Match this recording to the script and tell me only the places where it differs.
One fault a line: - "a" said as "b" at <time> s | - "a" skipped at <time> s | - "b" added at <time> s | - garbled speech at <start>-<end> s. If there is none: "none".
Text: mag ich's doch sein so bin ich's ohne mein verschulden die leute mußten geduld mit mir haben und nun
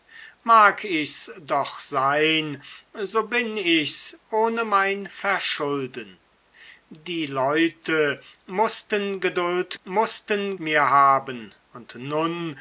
- "mit" said as "mußten" at 9.8 s